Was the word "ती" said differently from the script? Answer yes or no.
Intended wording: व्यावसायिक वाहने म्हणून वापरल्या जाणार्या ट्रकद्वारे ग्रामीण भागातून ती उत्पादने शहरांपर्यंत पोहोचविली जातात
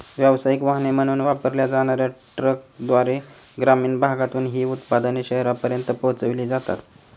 yes